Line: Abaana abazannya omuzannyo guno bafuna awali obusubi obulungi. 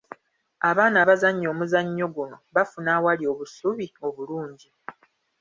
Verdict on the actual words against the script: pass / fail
pass